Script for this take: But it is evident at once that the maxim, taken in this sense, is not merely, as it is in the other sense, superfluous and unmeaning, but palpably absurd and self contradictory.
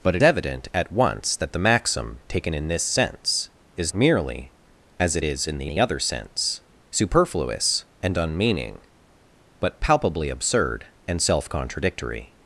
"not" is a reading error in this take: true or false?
true